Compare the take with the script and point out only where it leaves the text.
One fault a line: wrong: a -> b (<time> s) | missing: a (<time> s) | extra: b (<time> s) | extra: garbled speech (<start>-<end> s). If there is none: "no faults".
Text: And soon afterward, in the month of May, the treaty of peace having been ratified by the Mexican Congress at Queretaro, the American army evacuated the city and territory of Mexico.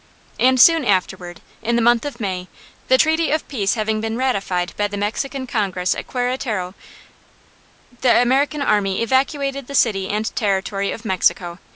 no faults